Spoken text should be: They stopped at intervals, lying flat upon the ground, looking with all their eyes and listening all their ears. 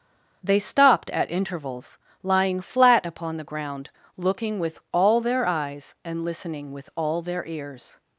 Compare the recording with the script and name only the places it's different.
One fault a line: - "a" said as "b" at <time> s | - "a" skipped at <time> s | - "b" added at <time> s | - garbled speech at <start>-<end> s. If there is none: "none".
- "with" added at 6.7 s